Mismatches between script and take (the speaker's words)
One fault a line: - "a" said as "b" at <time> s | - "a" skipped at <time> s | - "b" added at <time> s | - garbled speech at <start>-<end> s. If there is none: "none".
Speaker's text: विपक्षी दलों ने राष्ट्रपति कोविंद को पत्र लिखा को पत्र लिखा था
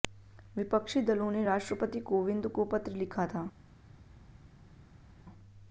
- "को पत्र लिखा" skipped at 3.3 s